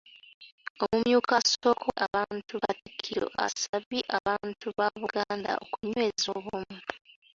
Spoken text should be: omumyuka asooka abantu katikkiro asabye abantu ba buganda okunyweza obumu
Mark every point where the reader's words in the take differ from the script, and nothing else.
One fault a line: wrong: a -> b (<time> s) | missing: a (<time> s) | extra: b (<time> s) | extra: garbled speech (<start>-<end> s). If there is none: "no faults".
no faults